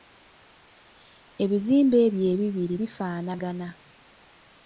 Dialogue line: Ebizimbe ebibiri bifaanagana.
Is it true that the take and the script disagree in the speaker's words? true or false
true